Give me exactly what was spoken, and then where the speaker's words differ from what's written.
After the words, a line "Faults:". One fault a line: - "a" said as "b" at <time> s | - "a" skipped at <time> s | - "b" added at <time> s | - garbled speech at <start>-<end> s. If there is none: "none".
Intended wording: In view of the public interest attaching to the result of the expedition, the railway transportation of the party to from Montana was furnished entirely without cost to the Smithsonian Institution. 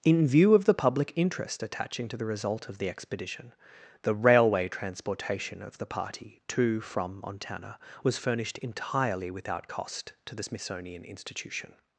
In view of the public interest attaching to the result of the expedition, the railway transportation of the party to from Montana was furnished entirely without cost to the Smithsonian Institution.
Faults:
none